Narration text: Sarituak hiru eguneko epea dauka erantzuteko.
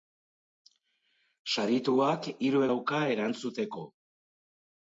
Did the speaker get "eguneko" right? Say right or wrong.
wrong